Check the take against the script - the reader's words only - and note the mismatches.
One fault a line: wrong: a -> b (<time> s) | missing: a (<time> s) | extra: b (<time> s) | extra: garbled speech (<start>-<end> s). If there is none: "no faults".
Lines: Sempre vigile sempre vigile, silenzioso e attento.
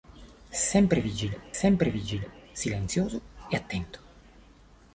no faults